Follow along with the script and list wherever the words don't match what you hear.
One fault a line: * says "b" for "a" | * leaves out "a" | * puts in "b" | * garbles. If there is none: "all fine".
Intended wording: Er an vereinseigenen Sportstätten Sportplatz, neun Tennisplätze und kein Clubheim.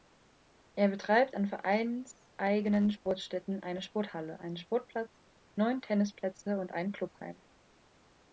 * puts in "betreibt"
* puts in "eine Sporthalle einen"
* says "ein" for "kein"